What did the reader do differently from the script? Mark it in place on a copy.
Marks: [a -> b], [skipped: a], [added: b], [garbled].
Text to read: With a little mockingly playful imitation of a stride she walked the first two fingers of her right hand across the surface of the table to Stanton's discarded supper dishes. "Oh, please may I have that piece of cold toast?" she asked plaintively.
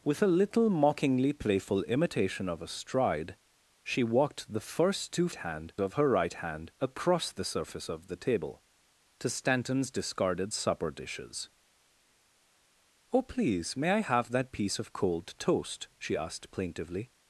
With a little mockingly playful imitation of a stride she walked the first two [fingers -> hand] of her right hand across the surface of the table to Stanton's discarded supper dishes. "Oh, please may I have that piece of cold toast?" she asked plaintively.